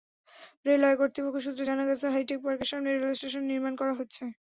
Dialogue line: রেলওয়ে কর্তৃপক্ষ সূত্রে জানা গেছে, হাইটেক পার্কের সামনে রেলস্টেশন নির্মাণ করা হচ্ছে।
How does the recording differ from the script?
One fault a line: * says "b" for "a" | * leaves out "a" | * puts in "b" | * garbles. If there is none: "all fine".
all fine